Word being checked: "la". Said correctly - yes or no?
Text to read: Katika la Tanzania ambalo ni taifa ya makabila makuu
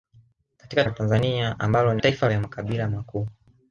yes